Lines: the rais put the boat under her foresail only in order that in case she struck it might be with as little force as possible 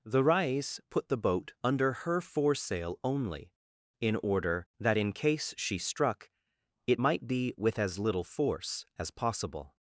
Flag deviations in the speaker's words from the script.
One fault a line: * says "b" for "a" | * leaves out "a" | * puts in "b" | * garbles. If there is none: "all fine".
all fine